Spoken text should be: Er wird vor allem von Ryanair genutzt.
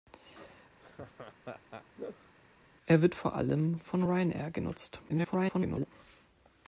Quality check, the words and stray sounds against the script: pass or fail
fail